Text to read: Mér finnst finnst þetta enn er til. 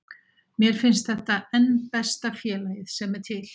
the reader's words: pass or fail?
fail